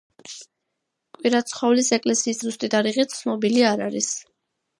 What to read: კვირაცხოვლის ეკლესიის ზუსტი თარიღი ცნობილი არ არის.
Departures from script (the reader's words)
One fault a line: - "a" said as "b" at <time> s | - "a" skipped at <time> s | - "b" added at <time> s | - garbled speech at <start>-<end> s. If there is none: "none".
none